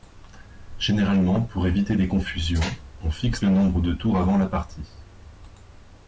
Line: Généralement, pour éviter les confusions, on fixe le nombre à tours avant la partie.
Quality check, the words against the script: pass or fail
fail